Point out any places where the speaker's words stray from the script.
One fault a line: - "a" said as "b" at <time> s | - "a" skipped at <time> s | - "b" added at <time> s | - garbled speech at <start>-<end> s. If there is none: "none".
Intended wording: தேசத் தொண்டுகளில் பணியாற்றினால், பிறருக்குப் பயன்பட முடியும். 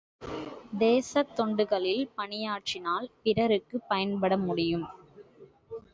none